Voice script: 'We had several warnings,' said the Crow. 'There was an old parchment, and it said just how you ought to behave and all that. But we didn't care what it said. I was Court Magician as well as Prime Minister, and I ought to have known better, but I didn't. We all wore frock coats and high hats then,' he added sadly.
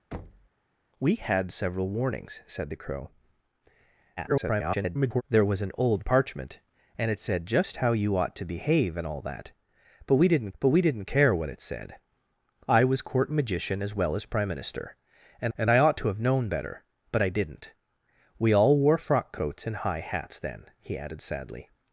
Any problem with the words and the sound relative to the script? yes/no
yes